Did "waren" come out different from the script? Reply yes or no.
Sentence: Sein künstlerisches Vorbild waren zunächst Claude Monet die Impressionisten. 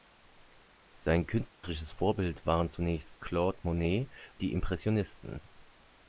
no